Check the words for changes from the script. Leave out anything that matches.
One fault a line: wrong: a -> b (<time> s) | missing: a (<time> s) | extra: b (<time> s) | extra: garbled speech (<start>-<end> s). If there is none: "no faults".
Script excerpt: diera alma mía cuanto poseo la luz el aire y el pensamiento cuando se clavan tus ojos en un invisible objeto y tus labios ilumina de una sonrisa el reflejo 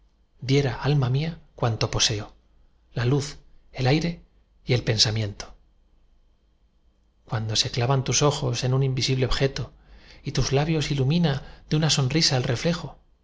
no faults